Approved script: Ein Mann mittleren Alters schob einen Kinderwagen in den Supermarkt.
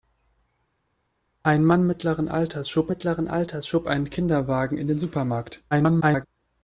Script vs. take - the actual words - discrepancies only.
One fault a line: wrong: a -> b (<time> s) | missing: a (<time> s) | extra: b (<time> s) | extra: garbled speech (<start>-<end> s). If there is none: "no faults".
extra: mittleren Alters schob (2.9 s)
extra: garbled speech (5.7-6.3 s)